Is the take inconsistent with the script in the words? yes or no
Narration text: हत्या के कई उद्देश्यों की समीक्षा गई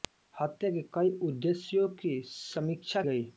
no